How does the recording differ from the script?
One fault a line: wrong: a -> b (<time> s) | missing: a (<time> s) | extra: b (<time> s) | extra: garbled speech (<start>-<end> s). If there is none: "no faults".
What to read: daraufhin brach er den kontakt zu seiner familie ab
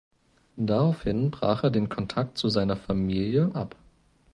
no faults